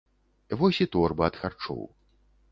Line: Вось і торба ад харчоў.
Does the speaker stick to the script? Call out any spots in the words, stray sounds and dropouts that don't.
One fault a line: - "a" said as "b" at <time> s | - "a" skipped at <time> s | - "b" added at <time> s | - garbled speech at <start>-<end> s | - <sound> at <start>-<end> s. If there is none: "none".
none